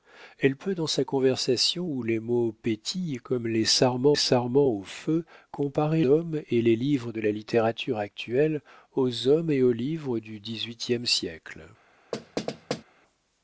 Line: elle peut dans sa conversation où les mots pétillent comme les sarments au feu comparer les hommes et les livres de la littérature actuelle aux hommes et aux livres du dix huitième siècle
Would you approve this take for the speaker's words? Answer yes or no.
no